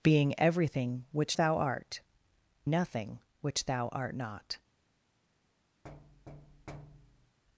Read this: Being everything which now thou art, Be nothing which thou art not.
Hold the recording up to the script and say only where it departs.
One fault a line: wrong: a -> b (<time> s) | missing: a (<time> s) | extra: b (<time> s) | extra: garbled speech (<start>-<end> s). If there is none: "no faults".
missing: now (1.4 s)
missing: Be (2.0 s)